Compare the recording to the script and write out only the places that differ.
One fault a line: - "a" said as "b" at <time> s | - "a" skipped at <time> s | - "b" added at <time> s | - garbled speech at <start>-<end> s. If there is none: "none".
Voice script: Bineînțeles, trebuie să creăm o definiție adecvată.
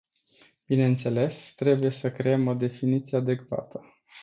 none